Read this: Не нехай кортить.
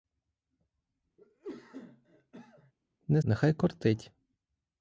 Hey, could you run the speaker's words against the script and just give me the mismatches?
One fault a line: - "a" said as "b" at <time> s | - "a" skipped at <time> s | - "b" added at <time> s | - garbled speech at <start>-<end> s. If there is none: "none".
none